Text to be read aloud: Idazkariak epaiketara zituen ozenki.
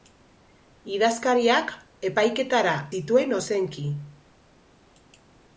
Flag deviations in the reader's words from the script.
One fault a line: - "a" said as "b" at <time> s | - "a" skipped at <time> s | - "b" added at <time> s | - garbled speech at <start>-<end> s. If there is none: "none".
none